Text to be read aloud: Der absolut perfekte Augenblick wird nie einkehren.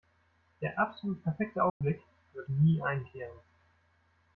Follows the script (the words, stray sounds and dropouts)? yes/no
no